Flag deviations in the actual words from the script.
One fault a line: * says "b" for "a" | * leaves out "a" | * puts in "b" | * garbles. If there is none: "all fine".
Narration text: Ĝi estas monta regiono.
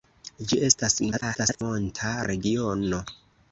* garbles